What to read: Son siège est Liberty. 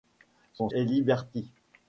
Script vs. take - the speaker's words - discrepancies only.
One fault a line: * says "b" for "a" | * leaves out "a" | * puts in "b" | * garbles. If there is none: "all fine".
* leaves out "siège"